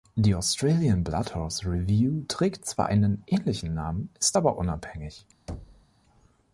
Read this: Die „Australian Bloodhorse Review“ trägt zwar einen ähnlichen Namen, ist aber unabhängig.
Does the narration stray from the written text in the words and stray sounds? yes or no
yes